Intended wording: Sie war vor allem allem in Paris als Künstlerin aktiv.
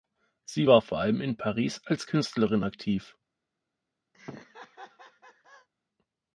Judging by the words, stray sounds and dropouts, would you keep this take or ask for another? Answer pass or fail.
fail